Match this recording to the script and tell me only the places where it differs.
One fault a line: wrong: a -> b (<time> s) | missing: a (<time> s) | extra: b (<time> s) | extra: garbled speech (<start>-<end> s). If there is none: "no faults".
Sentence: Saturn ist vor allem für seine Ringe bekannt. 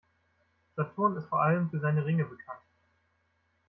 no faults